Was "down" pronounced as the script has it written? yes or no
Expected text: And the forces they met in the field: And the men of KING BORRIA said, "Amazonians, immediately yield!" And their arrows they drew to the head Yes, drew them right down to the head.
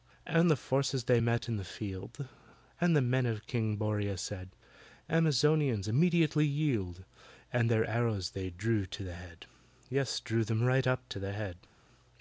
no